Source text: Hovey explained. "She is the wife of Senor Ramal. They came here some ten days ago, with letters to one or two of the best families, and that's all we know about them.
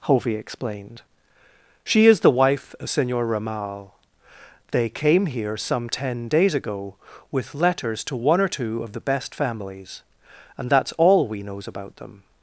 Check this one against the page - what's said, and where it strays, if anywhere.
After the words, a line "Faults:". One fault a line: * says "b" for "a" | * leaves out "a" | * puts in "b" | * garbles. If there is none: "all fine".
Hovey explained. "She is the wife of Senor Ramal. They came here some ten days ago, with letters to one or two of the best families, and that's all we knows about them.
Faults:
* says "knows" for "know"